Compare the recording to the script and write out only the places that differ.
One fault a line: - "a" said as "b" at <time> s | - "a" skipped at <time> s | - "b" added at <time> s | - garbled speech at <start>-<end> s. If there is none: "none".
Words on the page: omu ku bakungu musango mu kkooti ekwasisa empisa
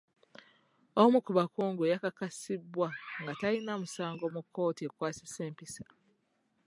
- "yakakasibwa nga talina" added at 1.9 s